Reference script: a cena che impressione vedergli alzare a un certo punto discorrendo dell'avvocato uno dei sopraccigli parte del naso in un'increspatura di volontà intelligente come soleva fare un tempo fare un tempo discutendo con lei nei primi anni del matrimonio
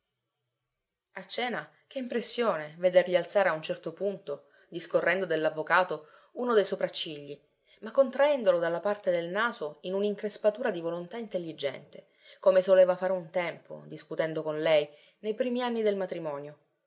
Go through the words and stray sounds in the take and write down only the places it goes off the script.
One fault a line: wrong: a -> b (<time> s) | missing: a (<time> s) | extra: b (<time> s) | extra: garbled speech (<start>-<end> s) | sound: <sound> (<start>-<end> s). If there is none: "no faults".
extra: ma contraendolo dalla (7.8 s)
missing: fare un tempo (13.8 s)